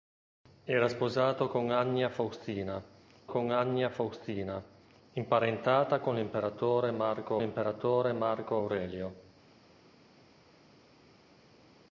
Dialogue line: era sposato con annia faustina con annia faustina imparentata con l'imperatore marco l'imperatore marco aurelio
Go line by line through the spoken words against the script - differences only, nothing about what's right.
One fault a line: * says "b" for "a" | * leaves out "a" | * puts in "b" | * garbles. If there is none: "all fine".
all fine